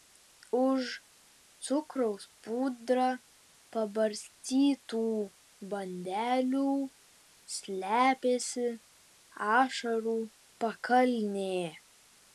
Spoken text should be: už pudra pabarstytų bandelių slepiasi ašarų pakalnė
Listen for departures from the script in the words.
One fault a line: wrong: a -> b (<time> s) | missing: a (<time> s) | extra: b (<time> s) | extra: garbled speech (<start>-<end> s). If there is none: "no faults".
extra: cukraus (1.6 s)